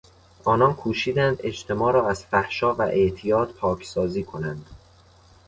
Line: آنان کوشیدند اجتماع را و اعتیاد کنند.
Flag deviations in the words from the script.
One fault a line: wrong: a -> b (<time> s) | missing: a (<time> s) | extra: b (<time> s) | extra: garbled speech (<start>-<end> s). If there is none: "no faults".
extra: از فحشا (2.1 s)
extra: پاکسازی (3.5 s)